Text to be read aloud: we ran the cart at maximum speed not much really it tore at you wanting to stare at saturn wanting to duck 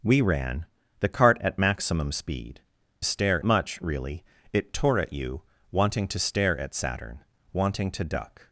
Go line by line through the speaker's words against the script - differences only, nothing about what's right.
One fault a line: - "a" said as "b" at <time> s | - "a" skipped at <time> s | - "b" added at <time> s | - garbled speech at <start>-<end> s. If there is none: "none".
- "not" said as "stare" at 3.0 s